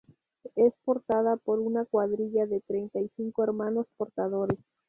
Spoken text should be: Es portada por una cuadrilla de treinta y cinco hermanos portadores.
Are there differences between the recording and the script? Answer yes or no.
no